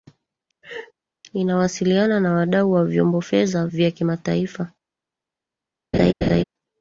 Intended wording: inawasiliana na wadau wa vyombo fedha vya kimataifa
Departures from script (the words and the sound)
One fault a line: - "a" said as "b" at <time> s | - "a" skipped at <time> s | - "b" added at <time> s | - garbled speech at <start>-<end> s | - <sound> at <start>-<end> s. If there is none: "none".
- laugh at 0.6-0.9 s
- laugh at 5.9-6.4 s